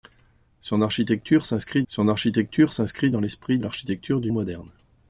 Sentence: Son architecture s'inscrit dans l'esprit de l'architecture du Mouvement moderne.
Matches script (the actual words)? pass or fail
fail